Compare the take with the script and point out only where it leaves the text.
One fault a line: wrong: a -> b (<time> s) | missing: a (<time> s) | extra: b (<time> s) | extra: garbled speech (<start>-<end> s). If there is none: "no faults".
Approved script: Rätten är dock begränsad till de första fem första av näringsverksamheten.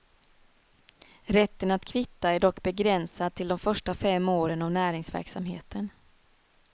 extra: att kvitta (1.7 s)
wrong: första -> åren (4.3 s)